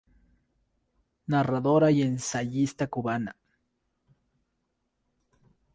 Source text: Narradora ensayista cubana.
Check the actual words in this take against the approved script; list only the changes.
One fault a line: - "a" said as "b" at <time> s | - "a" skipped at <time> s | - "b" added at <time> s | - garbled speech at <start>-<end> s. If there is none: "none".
- "y" added at 1.9 s